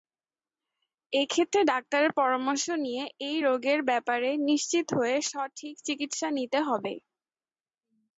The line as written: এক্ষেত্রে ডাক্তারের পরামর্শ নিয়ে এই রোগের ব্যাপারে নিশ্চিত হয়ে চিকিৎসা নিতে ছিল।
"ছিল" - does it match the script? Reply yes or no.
no